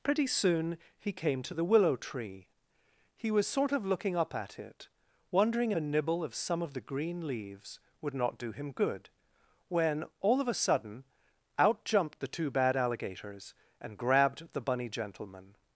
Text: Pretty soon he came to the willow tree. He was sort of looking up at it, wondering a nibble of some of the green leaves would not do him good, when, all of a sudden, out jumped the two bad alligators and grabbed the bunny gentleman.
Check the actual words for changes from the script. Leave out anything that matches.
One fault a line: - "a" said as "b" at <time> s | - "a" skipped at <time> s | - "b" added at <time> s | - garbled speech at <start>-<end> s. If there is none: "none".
none